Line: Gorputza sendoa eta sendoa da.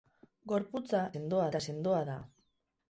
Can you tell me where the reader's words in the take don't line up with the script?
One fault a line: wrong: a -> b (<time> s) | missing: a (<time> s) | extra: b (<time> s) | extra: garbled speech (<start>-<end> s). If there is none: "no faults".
no faults